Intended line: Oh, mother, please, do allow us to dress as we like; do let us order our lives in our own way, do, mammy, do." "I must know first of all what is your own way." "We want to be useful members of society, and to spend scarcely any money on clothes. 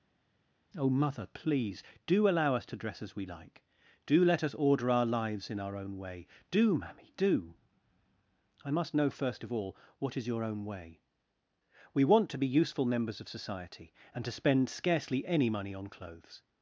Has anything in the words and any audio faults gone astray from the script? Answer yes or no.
no